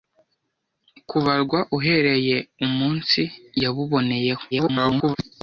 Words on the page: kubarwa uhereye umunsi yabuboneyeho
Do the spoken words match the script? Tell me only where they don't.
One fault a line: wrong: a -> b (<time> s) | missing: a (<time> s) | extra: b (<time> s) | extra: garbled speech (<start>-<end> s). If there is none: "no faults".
extra: garbled speech (4.5-5.2 s)